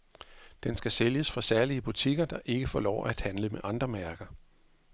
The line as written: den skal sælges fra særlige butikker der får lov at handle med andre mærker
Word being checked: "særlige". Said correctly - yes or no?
yes